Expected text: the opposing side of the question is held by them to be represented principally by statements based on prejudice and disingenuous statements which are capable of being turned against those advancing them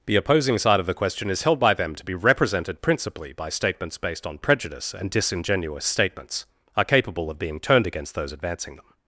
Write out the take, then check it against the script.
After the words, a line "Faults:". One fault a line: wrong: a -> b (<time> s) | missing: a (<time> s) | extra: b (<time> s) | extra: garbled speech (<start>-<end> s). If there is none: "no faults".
the opposing side of the question is held by them to be represented principally by statements based on prejudice and disingenuous statements are capable of being turned against those advancing them
Faults:
missing: which (6.5 s)